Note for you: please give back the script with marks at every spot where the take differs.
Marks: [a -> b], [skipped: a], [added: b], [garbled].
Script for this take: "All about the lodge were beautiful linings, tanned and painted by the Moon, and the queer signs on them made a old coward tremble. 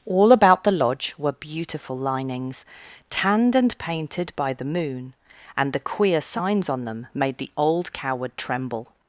"All about the lodge were beautiful linings, tanned and painted by the Moon, and the queer signs on them made [a -> the] old coward tremble.